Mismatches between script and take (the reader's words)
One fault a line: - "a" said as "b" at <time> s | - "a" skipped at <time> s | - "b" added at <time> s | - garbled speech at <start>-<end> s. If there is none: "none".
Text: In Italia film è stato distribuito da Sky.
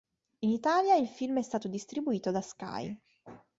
- "il" added at 0.9 s